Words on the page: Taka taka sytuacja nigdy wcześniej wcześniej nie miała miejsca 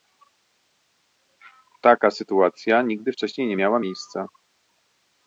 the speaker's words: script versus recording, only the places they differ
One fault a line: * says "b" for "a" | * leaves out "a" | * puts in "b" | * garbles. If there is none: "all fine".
* leaves out "taka"
* leaves out "wcześniej"